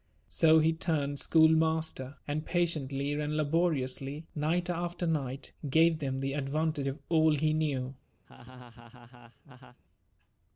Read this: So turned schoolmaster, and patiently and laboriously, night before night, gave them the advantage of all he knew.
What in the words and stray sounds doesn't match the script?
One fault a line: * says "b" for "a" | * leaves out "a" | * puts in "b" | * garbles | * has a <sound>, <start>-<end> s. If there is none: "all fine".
* puts in "he"
* says "after" for "before"
* has a laugh, 8.2-9.8 s